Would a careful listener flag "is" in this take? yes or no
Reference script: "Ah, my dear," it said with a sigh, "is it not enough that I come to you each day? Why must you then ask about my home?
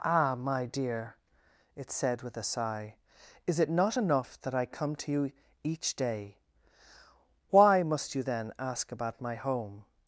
no